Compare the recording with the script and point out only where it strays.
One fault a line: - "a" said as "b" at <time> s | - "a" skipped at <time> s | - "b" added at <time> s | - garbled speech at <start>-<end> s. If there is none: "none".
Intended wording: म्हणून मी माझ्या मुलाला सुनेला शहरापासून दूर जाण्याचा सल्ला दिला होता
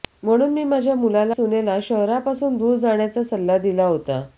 none